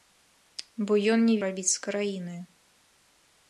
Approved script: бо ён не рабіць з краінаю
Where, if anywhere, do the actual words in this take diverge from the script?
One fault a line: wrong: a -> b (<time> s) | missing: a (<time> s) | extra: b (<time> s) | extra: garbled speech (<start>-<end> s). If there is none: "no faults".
no faults